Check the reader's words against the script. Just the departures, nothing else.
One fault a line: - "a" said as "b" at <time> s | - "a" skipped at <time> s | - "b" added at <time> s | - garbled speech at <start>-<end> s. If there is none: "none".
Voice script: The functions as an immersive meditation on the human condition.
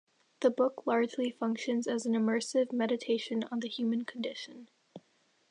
- "book largely" added at 0.5 s